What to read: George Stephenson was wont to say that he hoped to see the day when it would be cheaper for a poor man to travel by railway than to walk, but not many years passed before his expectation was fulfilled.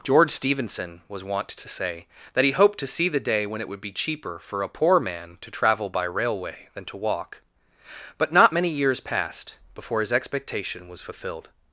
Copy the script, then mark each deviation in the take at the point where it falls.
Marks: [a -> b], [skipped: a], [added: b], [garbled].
George Stephenson was wont to say that he hoped to see the day when it would be cheaper for a poor man to travel by railway than to walk, but not many years passed before his expectation was fulfilled.